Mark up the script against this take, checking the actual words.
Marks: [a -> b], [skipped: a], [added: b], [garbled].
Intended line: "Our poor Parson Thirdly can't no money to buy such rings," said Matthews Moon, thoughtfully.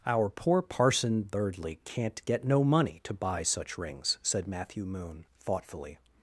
"Our poor Parson Thirdly can't [added: get] no money to buy such rings," said [Matthews -> Matthew] Moon, thoughtfully.